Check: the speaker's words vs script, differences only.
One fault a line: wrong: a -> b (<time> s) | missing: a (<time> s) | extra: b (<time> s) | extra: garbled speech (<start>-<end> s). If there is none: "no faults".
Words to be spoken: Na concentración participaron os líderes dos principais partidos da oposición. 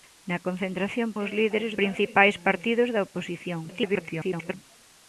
missing: participaron (1.1 s)
missing: dos (1.7 s)
extra: garbled speech (3.7-4.5 s)